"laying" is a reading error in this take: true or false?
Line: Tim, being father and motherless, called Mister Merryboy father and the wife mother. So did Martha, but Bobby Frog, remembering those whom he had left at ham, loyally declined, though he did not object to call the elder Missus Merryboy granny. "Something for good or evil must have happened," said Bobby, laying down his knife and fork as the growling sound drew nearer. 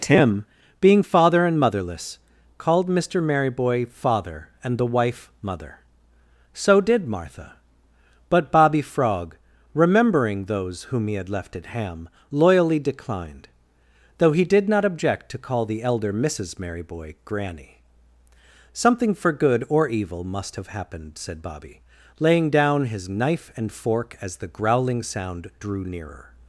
false